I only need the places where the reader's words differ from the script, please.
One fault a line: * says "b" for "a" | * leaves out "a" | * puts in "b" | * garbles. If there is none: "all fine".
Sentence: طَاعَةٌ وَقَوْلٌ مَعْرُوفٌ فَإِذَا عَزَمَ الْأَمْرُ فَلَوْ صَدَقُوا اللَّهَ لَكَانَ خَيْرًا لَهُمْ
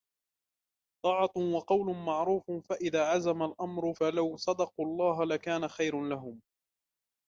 all fine